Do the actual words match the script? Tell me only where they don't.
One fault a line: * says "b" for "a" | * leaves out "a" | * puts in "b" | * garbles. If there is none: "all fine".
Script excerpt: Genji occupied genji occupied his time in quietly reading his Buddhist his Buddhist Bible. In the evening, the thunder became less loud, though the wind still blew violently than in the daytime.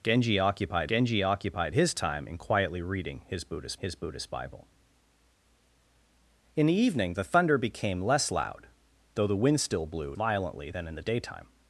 all fine